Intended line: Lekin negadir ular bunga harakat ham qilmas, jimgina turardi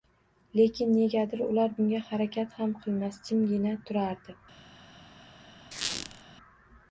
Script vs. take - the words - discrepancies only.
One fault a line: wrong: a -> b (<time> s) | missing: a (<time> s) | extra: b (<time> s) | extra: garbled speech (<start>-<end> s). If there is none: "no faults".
no faults